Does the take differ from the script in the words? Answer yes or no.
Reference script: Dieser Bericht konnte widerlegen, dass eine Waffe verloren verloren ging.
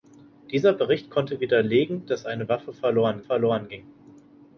no